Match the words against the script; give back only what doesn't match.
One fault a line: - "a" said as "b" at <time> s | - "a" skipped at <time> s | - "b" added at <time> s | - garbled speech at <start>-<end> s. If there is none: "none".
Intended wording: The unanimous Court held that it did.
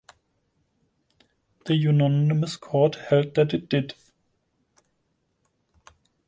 none